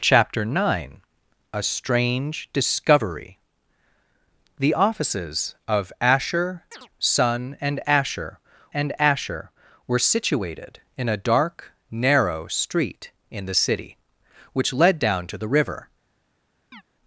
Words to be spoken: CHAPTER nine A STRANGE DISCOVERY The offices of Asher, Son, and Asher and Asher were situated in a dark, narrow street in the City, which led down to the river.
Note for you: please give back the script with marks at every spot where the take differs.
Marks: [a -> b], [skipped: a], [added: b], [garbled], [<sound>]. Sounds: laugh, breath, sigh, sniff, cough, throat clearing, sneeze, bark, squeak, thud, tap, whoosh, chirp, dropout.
CHAPTER nine A STRANGE DISCOVERY The offices of Asher, [chirp] Son, and Asher and Asher were situated in a dark, narrow street in the City, which led down to the river. [chirp]